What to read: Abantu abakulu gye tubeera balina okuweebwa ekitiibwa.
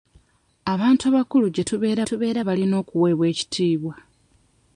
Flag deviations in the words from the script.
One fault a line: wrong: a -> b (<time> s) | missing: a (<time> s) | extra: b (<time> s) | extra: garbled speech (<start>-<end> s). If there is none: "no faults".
extra: tubeera (2.1 s)